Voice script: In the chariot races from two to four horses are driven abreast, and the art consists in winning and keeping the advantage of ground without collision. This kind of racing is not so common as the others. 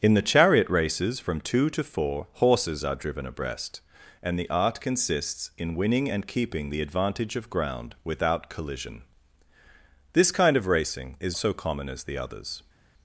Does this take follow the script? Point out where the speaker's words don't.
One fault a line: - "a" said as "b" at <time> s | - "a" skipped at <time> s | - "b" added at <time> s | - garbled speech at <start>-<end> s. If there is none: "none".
- "not" skipped at 11.3 s